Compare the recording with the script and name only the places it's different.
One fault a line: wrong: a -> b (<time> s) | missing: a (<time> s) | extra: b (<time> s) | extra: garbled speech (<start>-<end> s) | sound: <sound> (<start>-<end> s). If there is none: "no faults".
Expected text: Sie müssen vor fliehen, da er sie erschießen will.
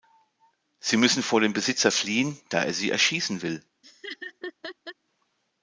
extra: dem Besitzer (1.4 s)
sound: laugh (3.8-5.0 s)